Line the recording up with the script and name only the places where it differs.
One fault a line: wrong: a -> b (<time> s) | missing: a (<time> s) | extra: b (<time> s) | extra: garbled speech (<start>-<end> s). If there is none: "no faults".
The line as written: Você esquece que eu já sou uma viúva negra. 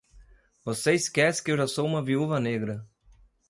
no faults